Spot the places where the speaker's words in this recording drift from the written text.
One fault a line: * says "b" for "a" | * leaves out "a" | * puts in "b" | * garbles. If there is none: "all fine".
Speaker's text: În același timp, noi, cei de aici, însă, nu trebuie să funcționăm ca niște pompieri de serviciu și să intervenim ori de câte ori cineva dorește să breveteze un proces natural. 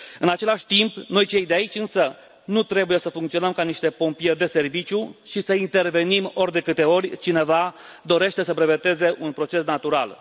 all fine